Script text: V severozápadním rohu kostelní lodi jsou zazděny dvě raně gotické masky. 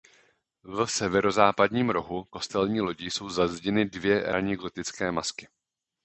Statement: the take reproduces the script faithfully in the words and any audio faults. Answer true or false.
true